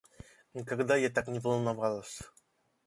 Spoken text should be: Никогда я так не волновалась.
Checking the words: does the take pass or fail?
pass